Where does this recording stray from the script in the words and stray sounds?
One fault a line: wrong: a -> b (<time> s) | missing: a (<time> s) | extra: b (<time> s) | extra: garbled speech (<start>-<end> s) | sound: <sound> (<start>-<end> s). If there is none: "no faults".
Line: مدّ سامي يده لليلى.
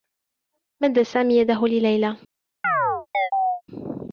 sound: chirp (2.6-3.6 s)